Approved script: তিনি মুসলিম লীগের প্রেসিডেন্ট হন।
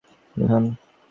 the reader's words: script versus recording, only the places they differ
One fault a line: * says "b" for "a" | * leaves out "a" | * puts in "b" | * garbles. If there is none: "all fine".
* leaves out "মুসলিম লীগের প্রেসিডেন্ট"